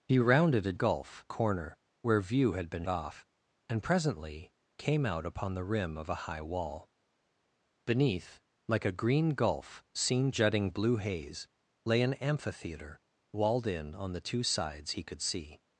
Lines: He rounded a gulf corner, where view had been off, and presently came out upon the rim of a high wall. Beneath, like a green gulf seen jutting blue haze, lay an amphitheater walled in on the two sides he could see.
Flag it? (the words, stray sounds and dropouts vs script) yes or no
no